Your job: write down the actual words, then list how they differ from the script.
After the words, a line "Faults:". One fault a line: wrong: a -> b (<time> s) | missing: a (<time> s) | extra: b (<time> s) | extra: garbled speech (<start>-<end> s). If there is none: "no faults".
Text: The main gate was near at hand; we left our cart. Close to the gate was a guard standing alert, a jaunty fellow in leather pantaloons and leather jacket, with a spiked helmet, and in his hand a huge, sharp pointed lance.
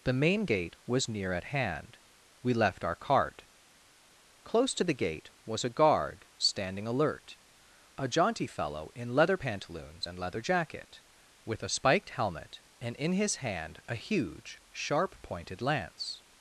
The main gate was near at hand; we left our cart. Close to the gate was a guard standing alert, a jaunty fellow in leather pantaloons and leather jacket, with a spiked helmet, and in his hand a huge, sharp pointed lance.
Faults:
no faults